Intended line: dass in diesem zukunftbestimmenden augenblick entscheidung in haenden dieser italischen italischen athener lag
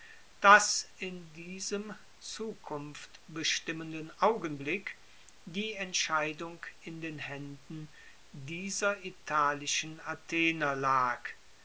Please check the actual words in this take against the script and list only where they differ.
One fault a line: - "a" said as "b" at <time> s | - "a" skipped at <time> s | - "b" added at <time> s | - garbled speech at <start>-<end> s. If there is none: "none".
- "die" added at 5.5 s
- "den" added at 7.0 s
- "italischen" skipped at 10.0 s